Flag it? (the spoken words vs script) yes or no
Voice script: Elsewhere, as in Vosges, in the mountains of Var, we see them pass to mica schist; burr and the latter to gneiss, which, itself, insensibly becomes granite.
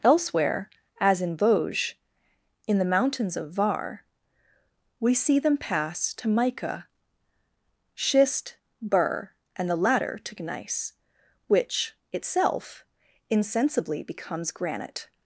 no